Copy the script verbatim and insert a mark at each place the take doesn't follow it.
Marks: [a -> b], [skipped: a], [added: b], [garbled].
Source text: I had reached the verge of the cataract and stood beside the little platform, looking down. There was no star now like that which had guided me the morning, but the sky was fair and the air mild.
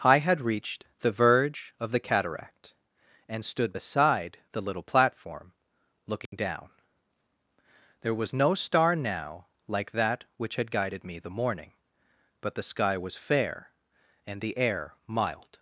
I had reached the verge of the cataract and stood beside the little platform, looking down. There was no star now like that which had guided me the morning, but the sky was fair and the air mild.